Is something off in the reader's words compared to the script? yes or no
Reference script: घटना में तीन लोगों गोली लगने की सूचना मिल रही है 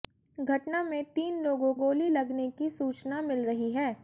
no